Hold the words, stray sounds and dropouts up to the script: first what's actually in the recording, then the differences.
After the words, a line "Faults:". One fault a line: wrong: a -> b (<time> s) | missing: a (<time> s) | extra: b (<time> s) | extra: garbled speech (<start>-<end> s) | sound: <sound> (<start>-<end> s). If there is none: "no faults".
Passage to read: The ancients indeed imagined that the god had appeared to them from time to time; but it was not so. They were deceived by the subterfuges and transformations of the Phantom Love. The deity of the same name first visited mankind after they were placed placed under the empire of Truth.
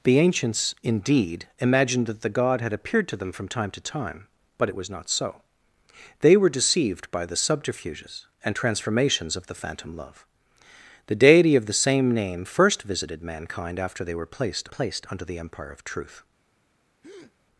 The ancients indeed imagined that the god had appeared to them from time to time; but it was not so. They were deceived by the subterfuges and transformations of the Phantom Love. The deity of the same name first visited mankind after they were placed placed under the empire of Truth.
Faults:
sound: breath (17.0-17.4 s)